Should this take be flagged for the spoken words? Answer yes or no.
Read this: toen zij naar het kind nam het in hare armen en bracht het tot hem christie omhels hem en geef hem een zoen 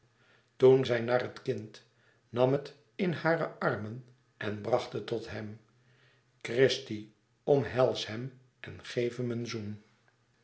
no